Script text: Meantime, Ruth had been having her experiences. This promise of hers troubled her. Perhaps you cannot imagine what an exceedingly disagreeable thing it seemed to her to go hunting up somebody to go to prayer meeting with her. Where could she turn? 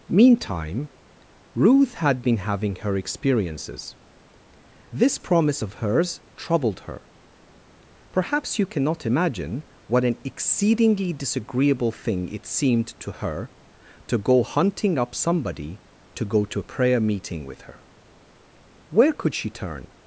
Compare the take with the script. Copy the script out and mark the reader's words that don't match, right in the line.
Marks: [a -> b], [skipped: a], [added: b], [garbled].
Meantime, Ruth had been having her experiences. This promise of hers troubled her. Perhaps you cannot imagine what an exceedingly disagreeable thing it seemed to her to go hunting up somebody to go to [added: a] prayer meeting with her. Where could she turn?